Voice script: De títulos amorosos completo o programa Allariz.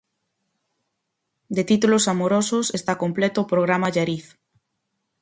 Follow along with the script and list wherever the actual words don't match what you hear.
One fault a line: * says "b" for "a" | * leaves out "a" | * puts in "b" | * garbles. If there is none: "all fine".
* puts in "está"